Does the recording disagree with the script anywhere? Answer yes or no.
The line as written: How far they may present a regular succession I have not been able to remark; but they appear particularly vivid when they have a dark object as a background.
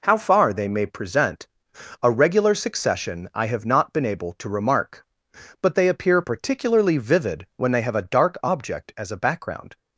no